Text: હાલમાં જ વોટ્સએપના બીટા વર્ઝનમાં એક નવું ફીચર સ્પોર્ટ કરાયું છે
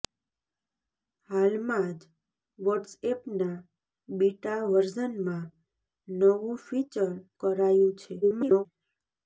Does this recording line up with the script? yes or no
no